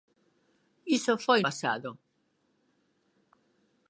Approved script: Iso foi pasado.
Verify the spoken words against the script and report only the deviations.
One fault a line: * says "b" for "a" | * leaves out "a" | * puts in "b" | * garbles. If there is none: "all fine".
all fine